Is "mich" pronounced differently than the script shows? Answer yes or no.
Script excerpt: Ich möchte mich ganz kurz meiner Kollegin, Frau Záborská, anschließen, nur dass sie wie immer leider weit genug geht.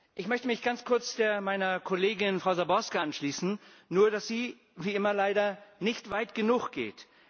no